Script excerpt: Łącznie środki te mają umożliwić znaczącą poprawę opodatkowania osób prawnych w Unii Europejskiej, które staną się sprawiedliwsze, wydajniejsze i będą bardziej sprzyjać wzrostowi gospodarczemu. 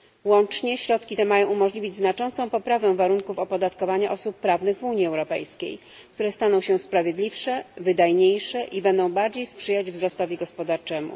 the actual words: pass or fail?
fail